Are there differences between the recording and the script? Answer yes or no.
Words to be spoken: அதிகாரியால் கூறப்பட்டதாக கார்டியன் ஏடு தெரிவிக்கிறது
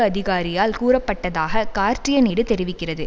no